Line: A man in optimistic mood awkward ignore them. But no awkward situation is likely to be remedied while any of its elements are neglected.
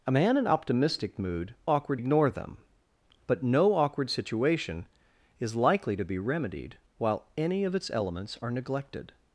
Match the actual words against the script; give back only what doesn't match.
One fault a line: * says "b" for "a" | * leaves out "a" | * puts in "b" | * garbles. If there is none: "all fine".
all fine